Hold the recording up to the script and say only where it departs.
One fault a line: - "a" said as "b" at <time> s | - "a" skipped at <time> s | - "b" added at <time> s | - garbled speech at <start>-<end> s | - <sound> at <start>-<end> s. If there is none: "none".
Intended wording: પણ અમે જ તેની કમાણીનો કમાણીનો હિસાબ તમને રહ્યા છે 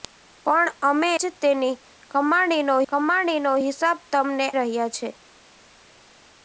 none